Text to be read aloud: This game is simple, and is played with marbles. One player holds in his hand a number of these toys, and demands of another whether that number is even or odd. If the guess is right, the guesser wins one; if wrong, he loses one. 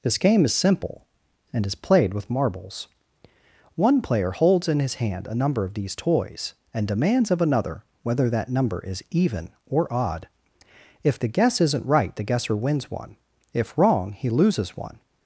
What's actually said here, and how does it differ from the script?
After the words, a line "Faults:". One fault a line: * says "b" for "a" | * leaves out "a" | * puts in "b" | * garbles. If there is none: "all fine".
This game is simple, and is played with marbles. One player holds in his hand a number of these toys, and demands of another whether that number is even or odd. If the guess isn't right, the guesser wins one; if wrong, he loses one.
Faults:
* says "isn't" for "is"